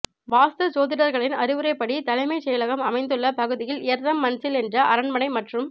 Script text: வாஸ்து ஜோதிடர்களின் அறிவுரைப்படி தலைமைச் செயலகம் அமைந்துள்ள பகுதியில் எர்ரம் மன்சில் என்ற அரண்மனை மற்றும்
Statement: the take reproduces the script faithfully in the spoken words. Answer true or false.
true